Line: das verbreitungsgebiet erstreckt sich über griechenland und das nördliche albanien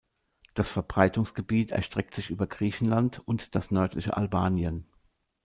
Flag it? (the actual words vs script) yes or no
no